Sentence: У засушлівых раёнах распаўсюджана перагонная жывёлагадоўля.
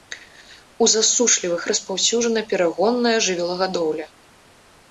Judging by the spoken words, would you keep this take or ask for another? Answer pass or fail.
fail